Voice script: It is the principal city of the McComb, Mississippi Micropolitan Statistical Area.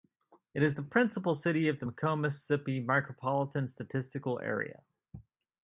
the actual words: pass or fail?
pass